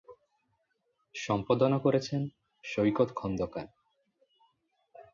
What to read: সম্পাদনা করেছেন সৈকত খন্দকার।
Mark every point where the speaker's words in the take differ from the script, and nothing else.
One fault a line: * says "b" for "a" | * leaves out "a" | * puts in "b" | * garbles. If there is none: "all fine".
all fine